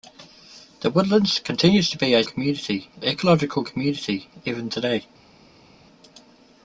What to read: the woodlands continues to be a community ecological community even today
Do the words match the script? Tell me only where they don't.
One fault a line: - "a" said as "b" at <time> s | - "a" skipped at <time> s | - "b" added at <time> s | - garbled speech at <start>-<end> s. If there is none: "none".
none